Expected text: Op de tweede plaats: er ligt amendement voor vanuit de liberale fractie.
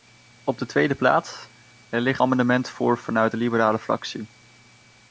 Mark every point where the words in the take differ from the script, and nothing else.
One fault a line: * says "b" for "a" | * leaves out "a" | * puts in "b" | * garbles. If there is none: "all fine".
all fine